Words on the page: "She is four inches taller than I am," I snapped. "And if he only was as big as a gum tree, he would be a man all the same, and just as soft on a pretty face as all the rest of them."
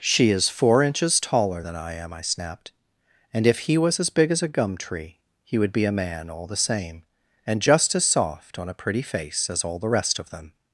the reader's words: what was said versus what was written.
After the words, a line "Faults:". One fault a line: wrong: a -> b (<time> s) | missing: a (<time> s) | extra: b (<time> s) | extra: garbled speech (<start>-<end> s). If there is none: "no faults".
"She is four inches taller than I am," I snapped. "And if he was as big as a gum tree, he would be a man all the same, and just as soft on a pretty face as all the rest of them."
Faults:
missing: only (3.8 s)